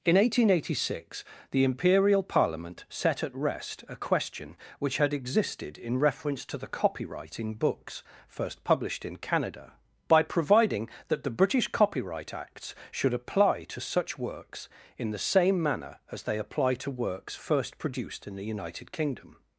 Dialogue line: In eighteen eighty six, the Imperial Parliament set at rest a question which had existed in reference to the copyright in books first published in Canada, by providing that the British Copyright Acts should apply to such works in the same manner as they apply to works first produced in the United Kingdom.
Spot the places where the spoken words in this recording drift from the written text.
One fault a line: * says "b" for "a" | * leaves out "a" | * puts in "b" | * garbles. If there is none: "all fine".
all fine